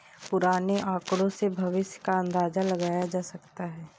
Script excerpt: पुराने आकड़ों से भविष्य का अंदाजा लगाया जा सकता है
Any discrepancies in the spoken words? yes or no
no